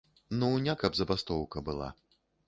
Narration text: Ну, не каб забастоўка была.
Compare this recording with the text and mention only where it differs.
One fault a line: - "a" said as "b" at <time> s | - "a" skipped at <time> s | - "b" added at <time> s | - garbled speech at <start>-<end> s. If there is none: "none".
none